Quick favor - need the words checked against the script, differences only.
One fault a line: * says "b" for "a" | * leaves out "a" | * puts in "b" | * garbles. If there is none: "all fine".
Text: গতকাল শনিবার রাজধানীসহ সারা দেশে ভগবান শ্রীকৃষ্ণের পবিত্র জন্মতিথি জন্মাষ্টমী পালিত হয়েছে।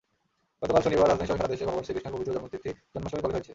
all fine